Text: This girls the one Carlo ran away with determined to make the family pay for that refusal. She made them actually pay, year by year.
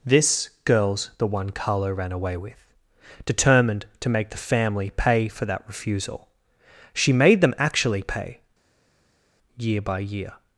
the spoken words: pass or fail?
pass